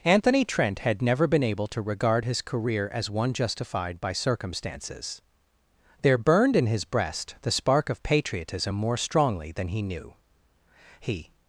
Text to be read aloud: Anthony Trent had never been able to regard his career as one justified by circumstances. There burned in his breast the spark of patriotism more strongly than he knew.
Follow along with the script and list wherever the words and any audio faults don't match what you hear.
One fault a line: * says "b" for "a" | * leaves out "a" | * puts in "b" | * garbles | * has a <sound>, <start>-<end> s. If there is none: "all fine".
* puts in "He"